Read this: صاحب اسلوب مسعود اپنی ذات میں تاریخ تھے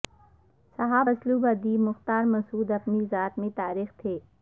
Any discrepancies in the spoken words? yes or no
yes